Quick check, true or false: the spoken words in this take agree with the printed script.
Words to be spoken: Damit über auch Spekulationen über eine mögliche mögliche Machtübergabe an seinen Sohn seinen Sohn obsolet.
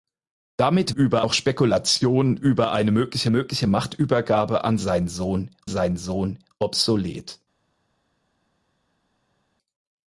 true